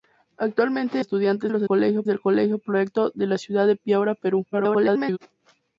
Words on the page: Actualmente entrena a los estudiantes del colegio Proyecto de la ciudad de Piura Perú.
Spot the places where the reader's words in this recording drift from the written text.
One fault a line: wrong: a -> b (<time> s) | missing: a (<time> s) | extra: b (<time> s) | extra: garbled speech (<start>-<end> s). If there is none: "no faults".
wrong: entrena -> estudiantes (1.0 s)
wrong: estudiantes -> colegio (1.6 s)
extra: garbled speech (4.5-5.2 s)